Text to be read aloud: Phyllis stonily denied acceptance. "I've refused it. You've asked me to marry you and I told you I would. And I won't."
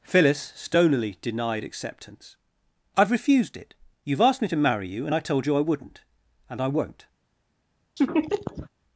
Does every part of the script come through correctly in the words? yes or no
no